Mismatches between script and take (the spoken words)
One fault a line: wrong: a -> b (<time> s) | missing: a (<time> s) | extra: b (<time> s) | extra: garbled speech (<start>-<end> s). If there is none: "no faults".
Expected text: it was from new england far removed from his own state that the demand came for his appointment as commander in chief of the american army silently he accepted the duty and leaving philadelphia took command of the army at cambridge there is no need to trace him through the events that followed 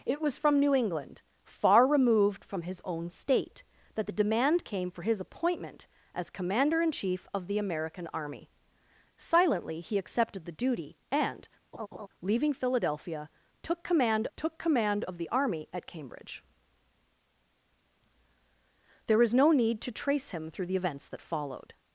extra: took command (14.4 s)